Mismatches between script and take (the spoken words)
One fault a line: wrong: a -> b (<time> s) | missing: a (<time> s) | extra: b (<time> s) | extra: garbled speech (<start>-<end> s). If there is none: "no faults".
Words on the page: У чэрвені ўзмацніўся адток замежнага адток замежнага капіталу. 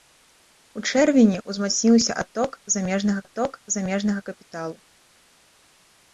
no faults